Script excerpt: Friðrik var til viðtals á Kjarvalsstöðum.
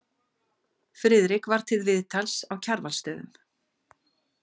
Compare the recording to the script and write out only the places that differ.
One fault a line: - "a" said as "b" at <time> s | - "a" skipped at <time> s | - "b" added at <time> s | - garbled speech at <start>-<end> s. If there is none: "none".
none